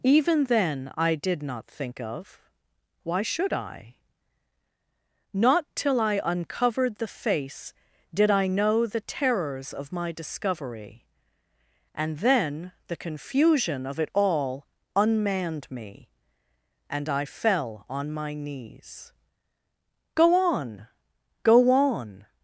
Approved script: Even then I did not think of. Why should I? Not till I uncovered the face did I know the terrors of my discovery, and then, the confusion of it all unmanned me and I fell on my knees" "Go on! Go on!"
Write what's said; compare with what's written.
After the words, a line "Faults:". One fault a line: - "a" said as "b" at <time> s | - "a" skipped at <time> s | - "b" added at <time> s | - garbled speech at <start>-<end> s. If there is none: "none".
Even then I did not think of. Why should I? Not till I uncovered the face did I know the terrors of my discovery, and then, the confusion of it all unmanned me and I fell on my knees" "Go on! Go on!"
Faults:
none